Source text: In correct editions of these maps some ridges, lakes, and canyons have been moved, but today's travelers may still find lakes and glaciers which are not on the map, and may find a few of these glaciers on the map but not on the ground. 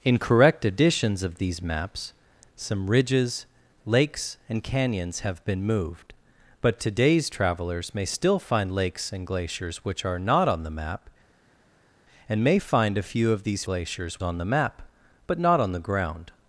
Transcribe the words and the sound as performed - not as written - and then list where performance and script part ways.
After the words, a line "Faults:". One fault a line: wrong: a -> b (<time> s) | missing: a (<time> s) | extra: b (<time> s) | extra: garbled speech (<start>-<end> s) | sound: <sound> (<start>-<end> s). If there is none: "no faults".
In correct editions of these maps some ridges, lakes, and canyons have been moved, but today's travelers may still find lakes and glaciers which are not on the map, and may find a few of these glaciers on the map but not on the ground.
Faults:
no faults